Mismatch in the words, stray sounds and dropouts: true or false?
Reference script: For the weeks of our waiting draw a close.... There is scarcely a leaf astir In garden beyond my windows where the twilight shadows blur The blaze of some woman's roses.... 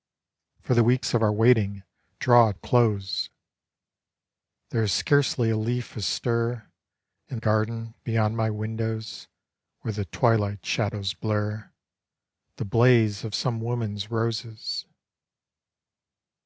false